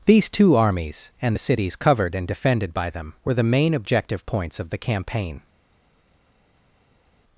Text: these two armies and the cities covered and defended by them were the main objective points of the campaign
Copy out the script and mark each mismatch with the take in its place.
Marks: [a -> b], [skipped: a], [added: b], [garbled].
these two armies and the cities covered and defended by them were the main objective points of the campaign